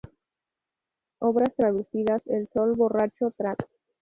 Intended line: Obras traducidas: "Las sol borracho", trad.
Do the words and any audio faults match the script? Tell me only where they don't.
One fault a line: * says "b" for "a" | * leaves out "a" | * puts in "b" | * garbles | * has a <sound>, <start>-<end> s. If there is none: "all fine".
* says "El" for "Las"